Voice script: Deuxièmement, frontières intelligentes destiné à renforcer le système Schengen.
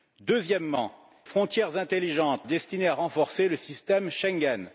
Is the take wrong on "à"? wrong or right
right